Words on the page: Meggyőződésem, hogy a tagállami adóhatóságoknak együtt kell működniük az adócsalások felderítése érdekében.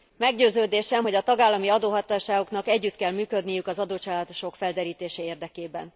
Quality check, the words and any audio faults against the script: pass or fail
pass